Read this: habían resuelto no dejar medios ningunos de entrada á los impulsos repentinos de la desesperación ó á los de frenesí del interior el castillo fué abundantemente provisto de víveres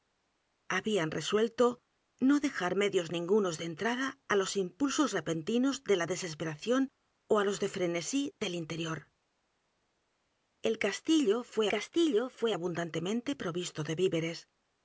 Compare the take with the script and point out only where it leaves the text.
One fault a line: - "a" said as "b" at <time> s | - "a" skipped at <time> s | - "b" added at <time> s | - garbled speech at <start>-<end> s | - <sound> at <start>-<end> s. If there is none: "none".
- "castillo fué" added at 11.7 s